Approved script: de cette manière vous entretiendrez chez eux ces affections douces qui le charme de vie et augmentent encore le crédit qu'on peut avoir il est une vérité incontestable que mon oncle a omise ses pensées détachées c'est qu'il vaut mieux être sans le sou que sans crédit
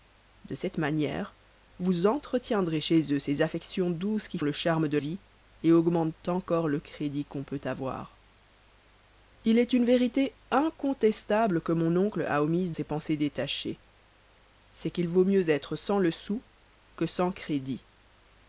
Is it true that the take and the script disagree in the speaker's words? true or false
false